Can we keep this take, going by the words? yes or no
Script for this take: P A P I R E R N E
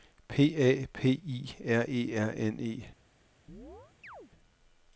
yes